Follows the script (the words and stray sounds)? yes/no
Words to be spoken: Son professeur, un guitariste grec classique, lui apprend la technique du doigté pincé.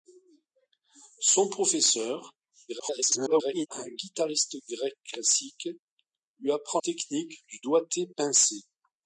no